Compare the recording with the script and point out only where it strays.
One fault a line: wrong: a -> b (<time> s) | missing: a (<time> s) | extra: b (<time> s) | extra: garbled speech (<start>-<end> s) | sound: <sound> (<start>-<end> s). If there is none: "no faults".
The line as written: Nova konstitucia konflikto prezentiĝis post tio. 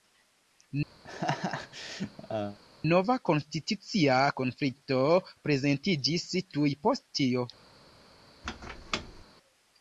sound: laugh (1.0-2.6 s)
extra: tuj (6.6 s)
sound: squeak (8.4-9.3 s)